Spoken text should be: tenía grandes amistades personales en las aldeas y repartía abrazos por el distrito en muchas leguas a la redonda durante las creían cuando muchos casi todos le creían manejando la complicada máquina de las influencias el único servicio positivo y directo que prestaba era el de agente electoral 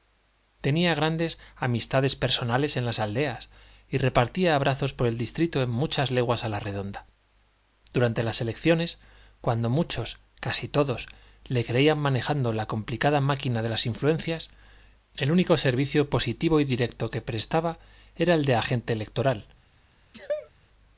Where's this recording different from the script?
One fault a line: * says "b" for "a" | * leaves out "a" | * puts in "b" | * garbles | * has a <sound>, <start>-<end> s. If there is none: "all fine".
* says "elecciones" for "creían"
* has a sneeze, 20.1-20.5 s